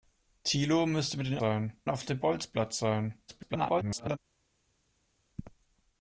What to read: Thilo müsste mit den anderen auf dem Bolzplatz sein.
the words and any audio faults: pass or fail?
fail